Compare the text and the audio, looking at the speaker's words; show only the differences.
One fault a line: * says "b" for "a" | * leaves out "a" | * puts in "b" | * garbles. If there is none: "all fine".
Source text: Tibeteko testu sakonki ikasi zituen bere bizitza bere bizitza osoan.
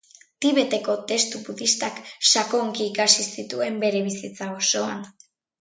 * puts in "budistak"
* leaves out "bere bizitza"